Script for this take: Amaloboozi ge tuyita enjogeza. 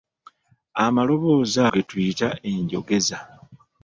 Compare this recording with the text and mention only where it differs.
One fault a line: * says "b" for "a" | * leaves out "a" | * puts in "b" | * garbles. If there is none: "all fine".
all fine